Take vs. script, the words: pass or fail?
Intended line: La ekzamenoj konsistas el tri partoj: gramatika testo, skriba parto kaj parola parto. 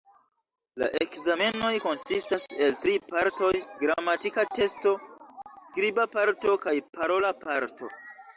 pass